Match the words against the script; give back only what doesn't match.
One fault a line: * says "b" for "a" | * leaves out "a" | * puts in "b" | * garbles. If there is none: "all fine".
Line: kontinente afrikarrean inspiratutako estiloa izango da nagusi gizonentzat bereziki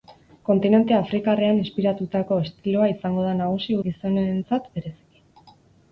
all fine